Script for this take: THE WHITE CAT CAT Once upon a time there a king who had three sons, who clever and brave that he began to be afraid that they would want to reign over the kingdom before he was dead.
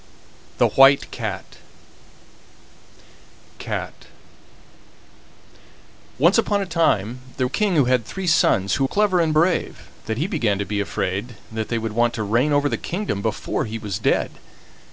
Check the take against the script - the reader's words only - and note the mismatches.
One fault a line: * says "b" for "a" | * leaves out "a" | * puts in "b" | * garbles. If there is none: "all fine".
all fine